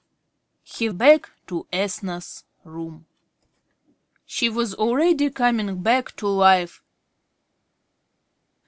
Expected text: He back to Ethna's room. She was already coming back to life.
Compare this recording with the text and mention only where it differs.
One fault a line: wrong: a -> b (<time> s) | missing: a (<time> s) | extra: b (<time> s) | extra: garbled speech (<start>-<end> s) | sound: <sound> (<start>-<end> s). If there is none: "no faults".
no faults